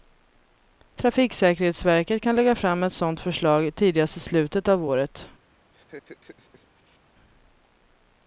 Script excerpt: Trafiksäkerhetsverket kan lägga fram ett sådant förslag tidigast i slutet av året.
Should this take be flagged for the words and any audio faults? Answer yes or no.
yes